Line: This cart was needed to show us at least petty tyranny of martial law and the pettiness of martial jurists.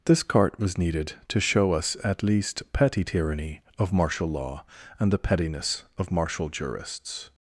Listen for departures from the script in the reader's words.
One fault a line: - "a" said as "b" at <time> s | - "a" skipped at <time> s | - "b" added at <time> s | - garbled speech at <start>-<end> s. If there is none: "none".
none